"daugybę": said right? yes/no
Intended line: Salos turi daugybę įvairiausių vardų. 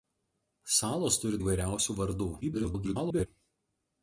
no